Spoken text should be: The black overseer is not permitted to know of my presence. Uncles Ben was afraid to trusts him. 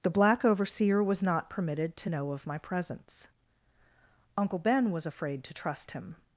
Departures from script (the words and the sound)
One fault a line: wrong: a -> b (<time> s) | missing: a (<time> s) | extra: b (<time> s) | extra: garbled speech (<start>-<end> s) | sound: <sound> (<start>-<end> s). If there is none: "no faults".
wrong: is -> was (1.0 s)
wrong: Uncles -> Uncle (4.4 s)
wrong: trusts -> trust (5.5 s)